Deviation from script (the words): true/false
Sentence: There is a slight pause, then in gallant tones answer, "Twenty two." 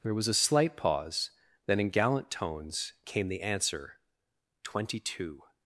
true